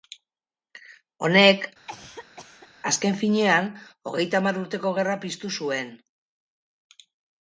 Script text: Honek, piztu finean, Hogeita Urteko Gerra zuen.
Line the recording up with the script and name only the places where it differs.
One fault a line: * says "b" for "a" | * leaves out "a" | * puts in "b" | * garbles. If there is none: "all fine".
* says "azken" for "piztu"
* puts in "Hamar"
* puts in "piztu"